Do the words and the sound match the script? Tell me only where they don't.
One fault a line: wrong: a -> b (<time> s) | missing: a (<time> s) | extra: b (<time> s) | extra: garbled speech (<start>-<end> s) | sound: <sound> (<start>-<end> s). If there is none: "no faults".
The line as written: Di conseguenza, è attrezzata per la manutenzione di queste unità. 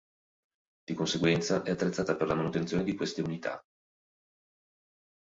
no faults